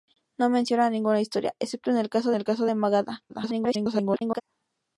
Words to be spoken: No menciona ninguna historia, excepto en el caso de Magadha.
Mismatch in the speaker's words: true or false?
true